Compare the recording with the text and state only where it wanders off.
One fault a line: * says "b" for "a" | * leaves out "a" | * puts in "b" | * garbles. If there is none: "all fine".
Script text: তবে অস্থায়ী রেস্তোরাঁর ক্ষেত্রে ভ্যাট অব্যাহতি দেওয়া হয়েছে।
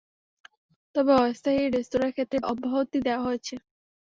* leaves out "ভ্যাট"